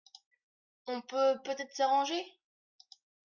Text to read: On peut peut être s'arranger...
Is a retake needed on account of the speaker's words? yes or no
no